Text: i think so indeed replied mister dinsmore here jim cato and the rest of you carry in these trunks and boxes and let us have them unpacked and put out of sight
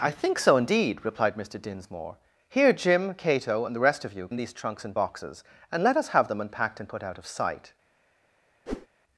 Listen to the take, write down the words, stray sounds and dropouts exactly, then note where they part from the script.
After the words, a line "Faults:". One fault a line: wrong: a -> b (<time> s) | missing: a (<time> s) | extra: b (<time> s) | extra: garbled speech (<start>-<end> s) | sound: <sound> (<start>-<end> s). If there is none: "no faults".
i think so indeed replied mister dinsmore here jim cato and the rest of you in these trunks and boxes and let us have them unpacked and put out of sight
Faults:
missing: carry (4.3 s)
sound: whoosh (8.7-8.9 s)